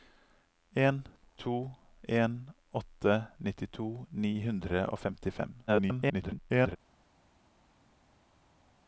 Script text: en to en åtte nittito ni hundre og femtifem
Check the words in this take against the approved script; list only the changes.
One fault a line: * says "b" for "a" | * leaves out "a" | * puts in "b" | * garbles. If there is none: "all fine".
* garbles